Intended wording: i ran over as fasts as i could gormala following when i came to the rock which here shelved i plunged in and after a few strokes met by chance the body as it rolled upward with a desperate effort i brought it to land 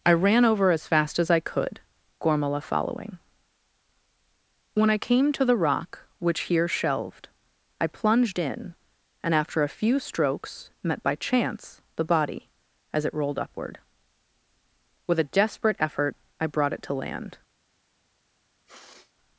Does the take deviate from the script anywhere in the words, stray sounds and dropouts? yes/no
yes